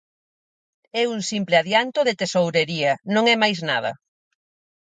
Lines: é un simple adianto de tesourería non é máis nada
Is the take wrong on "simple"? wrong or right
right